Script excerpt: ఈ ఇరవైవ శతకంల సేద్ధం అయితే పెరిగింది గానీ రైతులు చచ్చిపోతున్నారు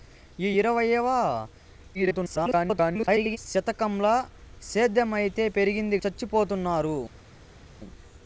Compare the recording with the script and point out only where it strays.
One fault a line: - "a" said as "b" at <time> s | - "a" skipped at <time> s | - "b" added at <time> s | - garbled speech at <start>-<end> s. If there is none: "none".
- garbled speech at 1.9-3.4 s
- "గానీ రైతులు" skipped at 6.0 s